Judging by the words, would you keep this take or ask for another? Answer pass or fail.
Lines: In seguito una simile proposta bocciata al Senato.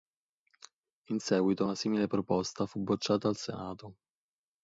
fail